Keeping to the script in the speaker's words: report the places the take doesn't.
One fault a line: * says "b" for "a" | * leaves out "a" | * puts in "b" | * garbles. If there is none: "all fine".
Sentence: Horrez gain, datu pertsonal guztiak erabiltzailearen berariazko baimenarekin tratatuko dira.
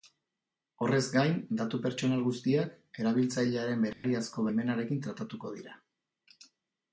all fine